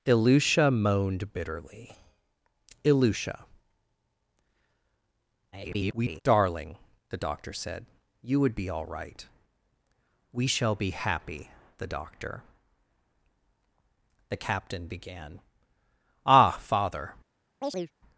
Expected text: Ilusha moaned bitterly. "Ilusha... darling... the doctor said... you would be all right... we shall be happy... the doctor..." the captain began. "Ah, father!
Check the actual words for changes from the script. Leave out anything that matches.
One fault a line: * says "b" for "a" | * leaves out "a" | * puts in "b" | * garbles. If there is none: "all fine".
* garbles